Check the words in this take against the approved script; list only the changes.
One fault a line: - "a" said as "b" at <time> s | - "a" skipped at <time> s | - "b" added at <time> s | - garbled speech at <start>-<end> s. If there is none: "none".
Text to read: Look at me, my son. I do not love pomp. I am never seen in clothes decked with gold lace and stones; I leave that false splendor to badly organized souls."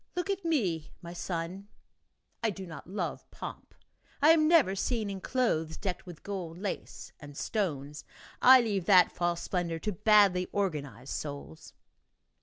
none